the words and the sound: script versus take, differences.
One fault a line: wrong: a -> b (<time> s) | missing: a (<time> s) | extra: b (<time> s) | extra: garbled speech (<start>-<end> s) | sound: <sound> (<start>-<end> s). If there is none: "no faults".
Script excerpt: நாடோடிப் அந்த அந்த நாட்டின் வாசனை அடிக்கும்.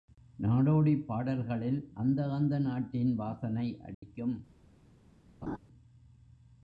extra: பாடல்களில் (1.1 s)
sound: dropout (3.9-4.0 s)
sound: laugh (5.4-5.6 s)